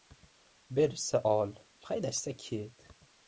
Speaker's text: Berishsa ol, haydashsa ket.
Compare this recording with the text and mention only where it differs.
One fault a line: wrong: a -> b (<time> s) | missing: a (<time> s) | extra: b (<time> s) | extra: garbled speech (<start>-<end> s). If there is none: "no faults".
no faults